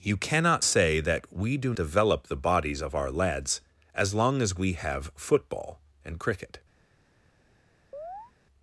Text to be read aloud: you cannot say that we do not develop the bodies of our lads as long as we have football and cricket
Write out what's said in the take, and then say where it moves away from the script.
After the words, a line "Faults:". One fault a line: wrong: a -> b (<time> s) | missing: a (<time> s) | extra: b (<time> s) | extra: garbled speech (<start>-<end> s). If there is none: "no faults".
you cannot say that we do develop the bodies of our lads as long as we have football and cricket
Faults:
missing: not (1.7 s)